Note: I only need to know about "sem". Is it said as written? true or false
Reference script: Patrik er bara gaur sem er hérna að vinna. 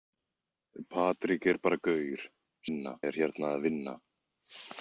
false